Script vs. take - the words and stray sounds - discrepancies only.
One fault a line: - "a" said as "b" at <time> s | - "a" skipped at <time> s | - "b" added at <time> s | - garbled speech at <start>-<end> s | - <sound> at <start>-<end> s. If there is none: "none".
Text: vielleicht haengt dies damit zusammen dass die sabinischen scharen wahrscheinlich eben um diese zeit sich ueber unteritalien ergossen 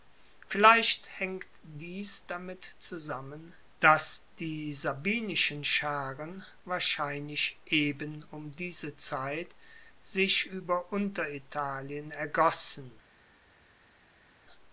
none